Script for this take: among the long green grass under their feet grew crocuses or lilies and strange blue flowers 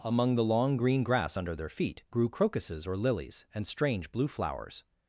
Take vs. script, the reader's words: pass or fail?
pass